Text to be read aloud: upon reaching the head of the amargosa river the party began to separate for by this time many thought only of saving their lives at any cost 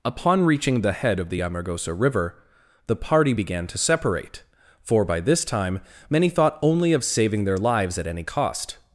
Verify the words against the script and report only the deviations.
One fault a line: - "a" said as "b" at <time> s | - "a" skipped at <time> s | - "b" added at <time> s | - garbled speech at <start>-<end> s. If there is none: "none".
none